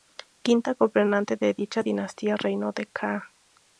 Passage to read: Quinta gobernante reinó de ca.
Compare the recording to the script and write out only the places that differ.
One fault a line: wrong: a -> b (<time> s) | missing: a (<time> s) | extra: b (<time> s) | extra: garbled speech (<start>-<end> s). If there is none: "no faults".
extra: de dicha dinastía (1.4 s)